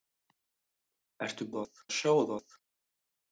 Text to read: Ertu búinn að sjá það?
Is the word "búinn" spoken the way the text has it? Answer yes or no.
no